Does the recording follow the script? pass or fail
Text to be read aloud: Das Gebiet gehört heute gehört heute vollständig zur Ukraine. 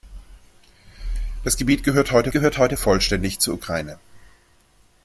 pass